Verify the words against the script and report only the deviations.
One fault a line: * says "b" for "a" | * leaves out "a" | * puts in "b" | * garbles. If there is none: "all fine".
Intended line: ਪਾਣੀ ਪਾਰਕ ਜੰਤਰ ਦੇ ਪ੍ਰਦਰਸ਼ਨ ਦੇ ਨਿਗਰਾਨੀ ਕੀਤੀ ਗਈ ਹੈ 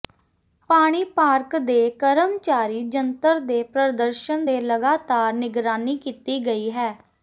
* puts in "ਦੇ ਕਰਮਚਾਰੀ"
* puts in "ਲਗਾਤਾਰ"